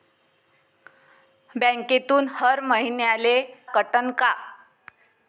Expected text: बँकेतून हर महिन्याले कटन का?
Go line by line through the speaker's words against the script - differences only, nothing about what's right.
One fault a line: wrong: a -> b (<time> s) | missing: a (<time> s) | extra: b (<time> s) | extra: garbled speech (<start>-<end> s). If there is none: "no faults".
no faults